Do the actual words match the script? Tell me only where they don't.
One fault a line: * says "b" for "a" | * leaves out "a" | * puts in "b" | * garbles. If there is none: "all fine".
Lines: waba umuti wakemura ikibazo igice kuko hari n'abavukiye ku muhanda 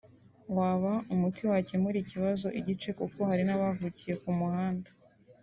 all fine